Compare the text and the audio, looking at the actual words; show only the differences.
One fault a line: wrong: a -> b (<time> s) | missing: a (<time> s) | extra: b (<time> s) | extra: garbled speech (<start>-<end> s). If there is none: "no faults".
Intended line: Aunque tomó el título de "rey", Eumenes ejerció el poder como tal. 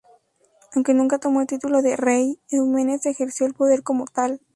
extra: nunca (0.9 s)